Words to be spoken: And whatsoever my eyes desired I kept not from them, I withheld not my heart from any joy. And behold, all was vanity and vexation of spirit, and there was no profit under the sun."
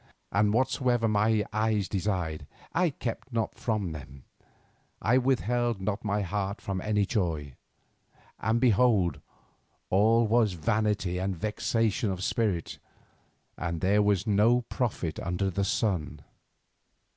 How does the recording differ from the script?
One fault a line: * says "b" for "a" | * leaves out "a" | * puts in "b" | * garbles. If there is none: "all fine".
all fine